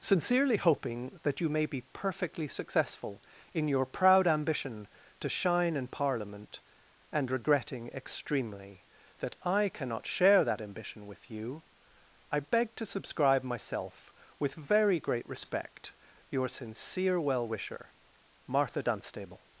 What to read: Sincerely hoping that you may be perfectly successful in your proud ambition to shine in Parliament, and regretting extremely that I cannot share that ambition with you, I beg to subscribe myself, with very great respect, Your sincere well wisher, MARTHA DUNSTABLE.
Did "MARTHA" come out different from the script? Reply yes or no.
no